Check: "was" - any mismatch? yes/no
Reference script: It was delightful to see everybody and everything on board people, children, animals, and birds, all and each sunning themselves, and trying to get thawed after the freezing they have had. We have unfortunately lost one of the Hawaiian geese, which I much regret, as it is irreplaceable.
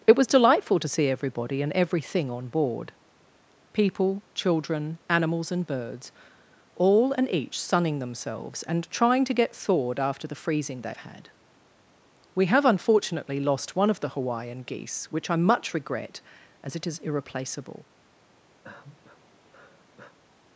no